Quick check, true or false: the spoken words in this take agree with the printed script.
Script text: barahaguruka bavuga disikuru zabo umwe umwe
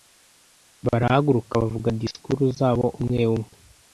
true